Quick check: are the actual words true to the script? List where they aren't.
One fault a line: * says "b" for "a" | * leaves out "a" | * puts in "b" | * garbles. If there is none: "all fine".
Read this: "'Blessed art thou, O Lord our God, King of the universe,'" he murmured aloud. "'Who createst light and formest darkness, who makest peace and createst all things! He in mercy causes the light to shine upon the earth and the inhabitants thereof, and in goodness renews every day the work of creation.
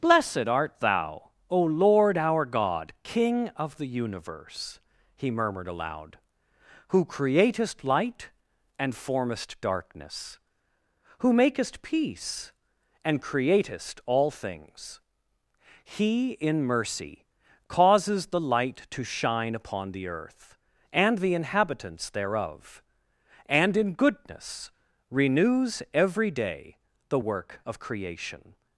all fine